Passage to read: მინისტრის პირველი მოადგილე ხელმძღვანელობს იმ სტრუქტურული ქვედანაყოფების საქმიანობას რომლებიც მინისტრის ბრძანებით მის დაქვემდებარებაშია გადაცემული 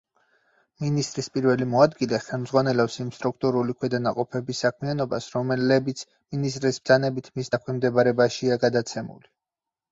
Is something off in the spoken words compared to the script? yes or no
no